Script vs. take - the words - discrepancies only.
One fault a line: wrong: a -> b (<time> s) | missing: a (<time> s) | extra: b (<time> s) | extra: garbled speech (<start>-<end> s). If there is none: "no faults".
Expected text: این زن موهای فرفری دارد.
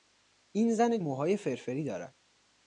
no faults